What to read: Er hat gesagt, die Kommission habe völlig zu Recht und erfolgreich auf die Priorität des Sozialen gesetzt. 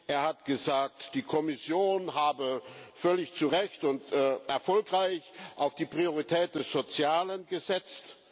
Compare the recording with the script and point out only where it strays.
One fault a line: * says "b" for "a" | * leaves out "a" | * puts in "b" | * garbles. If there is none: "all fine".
all fine